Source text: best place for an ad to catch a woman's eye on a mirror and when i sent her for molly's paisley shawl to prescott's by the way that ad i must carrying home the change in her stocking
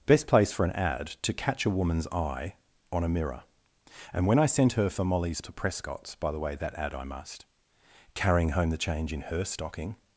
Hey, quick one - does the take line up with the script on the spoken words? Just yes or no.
no